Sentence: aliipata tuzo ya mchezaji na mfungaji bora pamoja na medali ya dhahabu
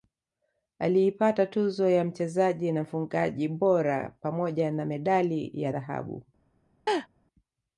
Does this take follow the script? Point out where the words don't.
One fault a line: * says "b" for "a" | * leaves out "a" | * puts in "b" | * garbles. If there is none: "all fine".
all fine